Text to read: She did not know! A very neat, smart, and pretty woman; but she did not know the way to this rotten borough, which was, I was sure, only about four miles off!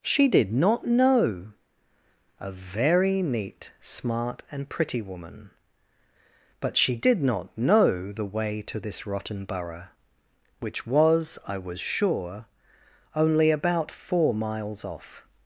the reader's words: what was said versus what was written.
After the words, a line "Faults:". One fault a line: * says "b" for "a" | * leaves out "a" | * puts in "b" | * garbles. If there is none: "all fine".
She did not know! A very neat, smart, and pretty woman; but she did not know the way to this rotten borough, which was, I was sure, only about four miles off!
Faults:
all fine